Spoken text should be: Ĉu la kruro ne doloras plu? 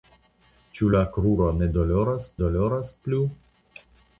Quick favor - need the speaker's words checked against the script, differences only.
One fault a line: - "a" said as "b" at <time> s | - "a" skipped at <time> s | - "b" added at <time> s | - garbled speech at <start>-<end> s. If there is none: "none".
- "doloras" added at 2.4 s